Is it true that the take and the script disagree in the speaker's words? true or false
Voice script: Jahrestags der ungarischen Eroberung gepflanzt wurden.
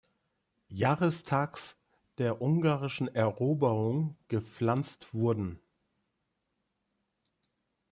false